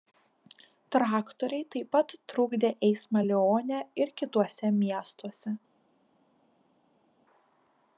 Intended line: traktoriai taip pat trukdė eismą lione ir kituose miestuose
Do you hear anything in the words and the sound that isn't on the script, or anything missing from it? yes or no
no